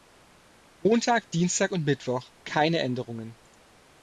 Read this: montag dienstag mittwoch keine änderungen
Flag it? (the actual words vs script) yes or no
yes